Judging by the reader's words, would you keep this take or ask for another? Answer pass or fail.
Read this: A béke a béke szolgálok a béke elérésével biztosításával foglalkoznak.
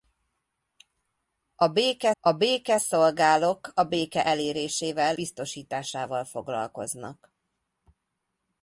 pass